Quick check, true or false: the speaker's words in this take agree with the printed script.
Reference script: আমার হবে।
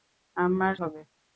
true